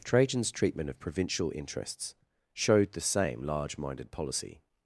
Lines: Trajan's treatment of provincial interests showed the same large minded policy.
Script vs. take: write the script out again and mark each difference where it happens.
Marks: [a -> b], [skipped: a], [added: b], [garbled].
Trajan's treatment of provincial interests showed the same large minded policy.